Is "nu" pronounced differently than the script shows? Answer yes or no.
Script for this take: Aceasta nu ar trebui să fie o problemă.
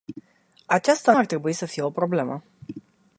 yes